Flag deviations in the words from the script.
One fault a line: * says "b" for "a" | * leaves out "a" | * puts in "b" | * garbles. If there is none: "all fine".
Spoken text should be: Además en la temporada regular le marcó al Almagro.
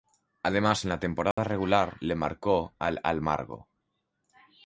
all fine